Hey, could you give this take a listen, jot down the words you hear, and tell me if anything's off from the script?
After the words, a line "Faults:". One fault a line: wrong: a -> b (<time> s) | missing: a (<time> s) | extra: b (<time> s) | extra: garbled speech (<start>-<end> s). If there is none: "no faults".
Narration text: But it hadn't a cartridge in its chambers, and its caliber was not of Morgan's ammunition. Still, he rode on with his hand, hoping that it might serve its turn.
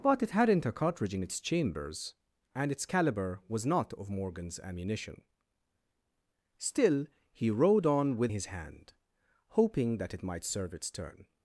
But it hadn't a cartridge in its chambers, and its caliber was not of Morgan's ammunition. Still, he rode on with his hand, hoping that it might serve its turn.
Faults:
no faults